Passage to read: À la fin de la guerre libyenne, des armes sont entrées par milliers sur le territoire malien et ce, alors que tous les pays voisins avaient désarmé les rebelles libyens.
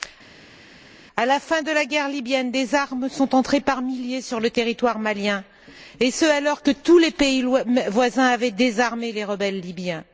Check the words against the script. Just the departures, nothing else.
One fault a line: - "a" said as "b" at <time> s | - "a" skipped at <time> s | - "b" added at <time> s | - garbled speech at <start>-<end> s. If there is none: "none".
none